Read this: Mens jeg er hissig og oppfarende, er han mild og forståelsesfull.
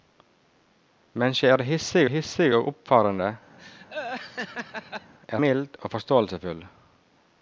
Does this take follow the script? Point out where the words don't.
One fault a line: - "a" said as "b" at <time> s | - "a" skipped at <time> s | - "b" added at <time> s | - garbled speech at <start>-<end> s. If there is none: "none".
- "hissig" added at 2.1 s
- "han" skipped at 5.4 s